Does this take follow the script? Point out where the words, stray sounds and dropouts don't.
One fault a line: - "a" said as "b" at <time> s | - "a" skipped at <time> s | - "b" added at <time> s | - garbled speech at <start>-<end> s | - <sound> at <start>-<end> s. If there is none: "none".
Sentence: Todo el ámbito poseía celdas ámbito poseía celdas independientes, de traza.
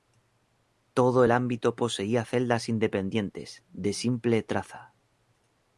- "ámbito poseía celdas" skipped at 2.7 s
- "simple" added at 3.9 s